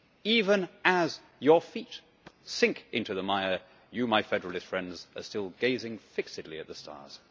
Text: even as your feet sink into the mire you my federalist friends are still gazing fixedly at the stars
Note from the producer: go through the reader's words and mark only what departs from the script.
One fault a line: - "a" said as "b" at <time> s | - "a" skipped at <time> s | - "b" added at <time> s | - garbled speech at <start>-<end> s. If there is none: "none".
none